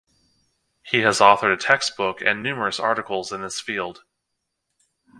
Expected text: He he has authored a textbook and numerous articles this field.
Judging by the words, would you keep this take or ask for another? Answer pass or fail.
fail